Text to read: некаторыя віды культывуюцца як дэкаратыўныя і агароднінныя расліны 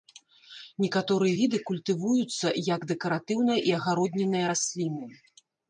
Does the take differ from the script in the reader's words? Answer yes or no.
no